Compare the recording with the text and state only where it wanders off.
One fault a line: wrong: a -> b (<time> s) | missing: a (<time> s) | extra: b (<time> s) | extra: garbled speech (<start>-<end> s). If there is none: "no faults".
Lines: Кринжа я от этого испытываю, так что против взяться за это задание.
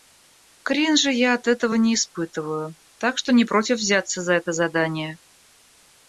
extra: не (1.7 s)
extra: не (3.3 s)